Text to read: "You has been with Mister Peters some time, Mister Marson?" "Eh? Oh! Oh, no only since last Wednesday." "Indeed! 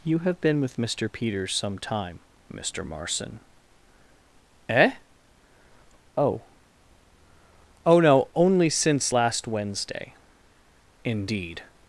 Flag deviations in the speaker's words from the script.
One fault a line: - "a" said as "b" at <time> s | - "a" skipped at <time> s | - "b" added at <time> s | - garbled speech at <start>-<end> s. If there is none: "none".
- "has" said as "have" at 0.2 s